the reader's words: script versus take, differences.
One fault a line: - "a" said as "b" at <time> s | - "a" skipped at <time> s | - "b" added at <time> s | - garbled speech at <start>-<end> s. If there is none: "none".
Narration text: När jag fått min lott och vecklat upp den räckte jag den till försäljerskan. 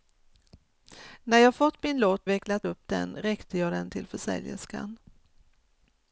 - "och" skipped at 2.3 s